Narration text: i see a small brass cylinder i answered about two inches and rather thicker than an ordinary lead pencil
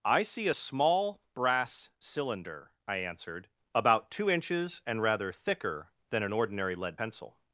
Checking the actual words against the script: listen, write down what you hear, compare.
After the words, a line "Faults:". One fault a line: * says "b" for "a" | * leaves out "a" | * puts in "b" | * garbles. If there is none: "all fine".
i see a small brass cylinder i answered about two inches and rather thicker than an ordinary lead pencil
Faults:
all fine